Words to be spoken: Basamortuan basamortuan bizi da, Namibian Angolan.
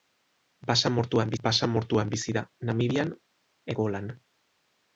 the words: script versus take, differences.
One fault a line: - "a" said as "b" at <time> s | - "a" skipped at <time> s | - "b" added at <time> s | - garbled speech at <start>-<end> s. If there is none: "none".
none